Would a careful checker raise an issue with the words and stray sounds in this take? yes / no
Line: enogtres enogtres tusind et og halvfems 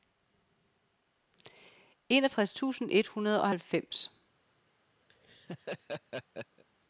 yes